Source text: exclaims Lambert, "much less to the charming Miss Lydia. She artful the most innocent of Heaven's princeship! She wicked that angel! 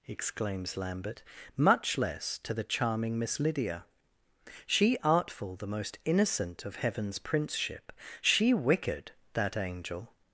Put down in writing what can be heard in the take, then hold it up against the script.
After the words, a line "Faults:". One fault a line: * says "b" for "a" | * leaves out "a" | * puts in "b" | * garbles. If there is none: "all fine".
exclaims Lambert, "much less to the charming Miss Lydia. She artful the most innocent of Heaven's princeship! She wicked that angel!
Faults:
all fine